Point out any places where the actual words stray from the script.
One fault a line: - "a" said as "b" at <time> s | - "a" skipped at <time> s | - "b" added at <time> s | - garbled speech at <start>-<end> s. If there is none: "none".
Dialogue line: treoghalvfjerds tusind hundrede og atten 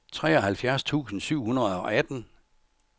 - "syv" added at 1.2 s